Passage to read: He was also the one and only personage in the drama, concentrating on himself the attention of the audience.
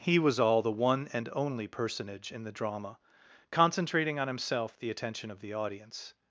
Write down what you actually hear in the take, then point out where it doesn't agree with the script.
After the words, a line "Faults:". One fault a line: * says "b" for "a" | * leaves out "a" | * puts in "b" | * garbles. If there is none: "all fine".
He was all the one and only personage in the drama, concentrating on himself the attention of the audience.
Faults:
* says "all" for "also"